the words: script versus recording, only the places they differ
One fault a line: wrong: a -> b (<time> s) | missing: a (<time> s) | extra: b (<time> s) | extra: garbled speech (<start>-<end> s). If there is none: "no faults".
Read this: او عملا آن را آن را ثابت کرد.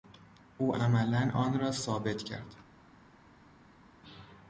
missing: آن را (1.7 s)